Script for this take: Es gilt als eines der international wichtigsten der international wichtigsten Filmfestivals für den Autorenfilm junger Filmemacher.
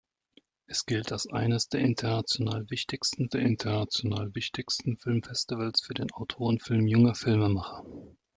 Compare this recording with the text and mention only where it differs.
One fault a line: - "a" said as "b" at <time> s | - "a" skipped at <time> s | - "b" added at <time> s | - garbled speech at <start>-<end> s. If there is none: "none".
none